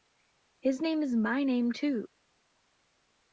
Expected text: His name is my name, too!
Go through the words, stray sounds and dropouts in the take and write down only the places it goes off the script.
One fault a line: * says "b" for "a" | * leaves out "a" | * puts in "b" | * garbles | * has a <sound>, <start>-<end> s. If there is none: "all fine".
all fine